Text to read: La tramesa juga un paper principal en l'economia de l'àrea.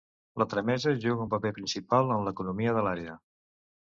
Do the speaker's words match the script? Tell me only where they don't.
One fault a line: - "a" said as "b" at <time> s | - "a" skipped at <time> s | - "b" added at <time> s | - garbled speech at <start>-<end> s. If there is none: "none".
none